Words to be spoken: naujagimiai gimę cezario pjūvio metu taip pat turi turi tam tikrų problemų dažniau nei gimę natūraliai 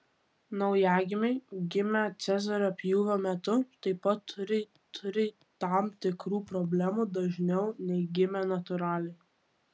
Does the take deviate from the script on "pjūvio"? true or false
false